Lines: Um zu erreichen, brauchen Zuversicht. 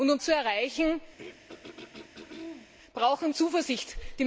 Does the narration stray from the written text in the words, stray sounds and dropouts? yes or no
yes